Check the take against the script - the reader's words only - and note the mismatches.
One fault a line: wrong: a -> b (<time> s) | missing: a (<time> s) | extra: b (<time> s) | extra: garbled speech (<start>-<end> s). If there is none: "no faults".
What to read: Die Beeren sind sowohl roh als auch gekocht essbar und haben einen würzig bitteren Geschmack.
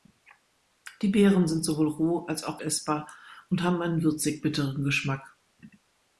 missing: gekocht (2.6 s)